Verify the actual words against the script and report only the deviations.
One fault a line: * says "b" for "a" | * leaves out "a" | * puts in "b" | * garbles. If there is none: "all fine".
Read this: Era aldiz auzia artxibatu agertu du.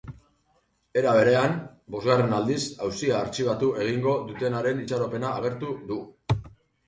* puts in "berean bosgarren"
* puts in "egingo dutenaren itxaropena"